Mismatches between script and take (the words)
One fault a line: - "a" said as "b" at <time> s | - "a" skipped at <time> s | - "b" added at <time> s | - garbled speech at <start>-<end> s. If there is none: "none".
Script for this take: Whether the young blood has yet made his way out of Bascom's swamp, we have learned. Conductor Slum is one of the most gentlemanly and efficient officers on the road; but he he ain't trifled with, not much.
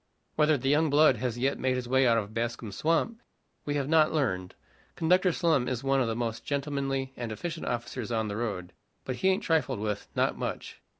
- "not" added at 3.9 s
- "he" skipped at 9.3 s